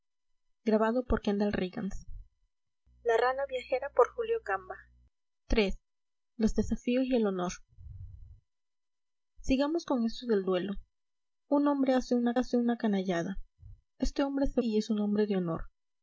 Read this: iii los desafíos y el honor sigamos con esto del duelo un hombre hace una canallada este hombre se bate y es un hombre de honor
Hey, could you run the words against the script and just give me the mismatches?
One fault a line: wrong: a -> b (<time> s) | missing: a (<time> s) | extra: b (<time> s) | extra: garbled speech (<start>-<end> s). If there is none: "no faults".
extra: hace una (12.3 s)
missing: bate (14.6 s)